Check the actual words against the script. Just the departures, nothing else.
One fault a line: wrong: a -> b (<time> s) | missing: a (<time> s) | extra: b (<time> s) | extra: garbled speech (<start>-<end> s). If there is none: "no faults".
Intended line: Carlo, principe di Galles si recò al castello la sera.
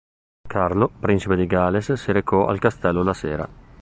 no faults